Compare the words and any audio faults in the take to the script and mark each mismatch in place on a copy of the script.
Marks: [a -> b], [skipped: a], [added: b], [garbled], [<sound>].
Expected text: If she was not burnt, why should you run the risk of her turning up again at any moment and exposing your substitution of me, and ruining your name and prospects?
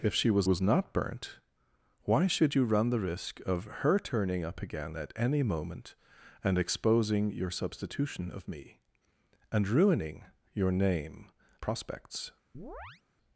If she was [added: was] not burnt, why should you run the risk of her turning up again at any moment and exposing your substitution of me, and ruining your name [skipped: and] prospects? [chirp]